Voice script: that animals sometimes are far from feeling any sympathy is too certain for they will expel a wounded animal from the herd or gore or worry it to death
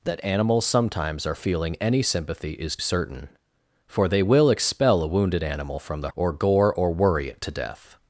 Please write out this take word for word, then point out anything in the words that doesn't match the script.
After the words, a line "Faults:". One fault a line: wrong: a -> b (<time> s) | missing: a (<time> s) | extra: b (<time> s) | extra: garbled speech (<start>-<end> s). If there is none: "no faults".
that animals sometimes are feeling any sympathy is certain for they will expel a wounded animal from the or gore or worry it to death
Faults:
missing: far from (1.4 s)
missing: too (2.8 s)
missing: herd (6.1 s)